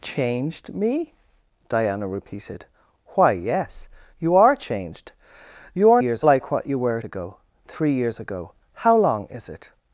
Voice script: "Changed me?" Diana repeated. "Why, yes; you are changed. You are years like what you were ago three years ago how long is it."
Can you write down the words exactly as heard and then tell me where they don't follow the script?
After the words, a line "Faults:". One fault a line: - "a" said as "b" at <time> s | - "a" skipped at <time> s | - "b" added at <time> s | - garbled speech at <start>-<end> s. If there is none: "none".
"Changed me?" Diana repeated. "Why, yes; you are changed. You are years like what you were ago three years ago how long is it."
Faults:
none